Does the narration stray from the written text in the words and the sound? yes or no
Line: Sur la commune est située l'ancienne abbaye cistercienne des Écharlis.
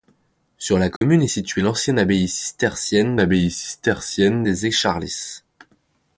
yes